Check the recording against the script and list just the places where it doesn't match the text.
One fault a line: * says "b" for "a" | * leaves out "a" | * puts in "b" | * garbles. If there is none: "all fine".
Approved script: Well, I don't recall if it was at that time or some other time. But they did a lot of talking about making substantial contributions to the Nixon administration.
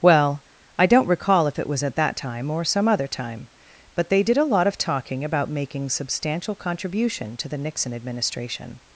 * says "contribution" for "contributions"